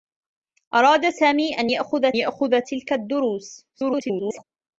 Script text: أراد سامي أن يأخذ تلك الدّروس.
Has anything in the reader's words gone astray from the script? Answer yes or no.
yes